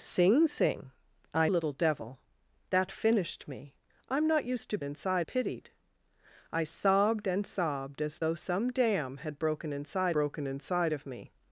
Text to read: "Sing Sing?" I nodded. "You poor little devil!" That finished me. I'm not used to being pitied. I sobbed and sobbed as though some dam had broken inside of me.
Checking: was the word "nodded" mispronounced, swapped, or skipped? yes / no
yes